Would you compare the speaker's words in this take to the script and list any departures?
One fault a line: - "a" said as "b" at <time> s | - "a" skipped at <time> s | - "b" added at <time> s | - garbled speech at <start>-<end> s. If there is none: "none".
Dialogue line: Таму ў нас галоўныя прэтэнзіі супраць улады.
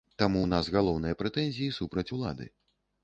none